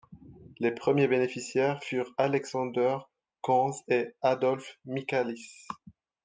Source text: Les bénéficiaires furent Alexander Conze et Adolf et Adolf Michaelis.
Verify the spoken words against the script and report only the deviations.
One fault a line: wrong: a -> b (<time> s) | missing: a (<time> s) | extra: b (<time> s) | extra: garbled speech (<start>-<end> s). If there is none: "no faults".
extra: premiers (0.7 s)
missing: et Adolf (4.8 s)